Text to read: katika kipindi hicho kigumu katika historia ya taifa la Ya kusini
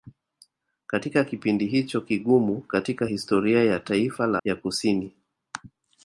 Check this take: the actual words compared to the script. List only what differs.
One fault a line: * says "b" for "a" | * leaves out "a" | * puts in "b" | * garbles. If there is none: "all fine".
all fine